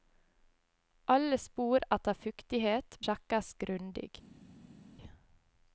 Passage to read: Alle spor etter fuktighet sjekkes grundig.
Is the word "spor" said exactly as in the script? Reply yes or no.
yes